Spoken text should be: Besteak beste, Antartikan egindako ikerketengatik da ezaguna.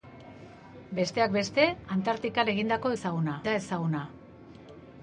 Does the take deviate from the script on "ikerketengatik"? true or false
true